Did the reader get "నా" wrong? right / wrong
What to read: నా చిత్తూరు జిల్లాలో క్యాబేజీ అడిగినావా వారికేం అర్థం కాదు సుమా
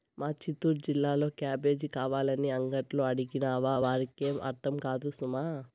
wrong